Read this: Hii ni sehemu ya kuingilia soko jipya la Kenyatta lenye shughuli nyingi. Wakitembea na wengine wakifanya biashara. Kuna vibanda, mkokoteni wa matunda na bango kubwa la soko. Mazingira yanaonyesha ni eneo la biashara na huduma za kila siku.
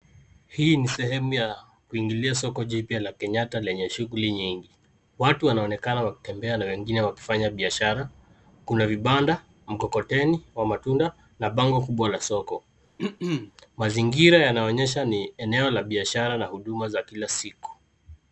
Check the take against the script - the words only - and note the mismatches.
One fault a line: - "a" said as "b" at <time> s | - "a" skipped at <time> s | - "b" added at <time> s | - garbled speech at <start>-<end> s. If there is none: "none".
- "Watu wanaonekana" added at 5.2 s